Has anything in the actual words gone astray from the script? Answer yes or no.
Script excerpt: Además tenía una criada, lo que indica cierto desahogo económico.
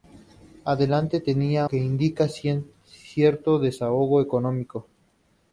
yes